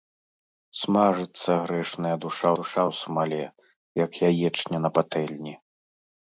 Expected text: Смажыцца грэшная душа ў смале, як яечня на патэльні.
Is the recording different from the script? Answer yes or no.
yes